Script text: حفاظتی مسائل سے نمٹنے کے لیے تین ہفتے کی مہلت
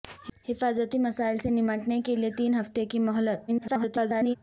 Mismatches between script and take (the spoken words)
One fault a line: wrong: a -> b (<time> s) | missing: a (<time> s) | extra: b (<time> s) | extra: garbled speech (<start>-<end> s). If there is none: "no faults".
extra: garbled speech (3.5-4.4 s)